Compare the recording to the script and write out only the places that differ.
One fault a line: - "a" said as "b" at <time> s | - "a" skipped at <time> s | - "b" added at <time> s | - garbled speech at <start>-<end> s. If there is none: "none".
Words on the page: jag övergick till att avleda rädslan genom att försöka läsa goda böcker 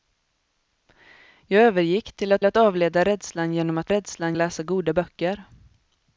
- "att" added at 2.4 s
- "försöka" said as "rädslan" at 3.9 s